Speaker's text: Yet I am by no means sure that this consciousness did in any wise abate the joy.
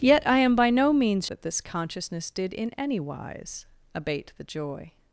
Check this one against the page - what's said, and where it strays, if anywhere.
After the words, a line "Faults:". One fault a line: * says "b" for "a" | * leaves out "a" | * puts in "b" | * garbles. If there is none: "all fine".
Yet I am by no means that this consciousness did in any wise abate the joy.
Faults:
* leaves out "sure"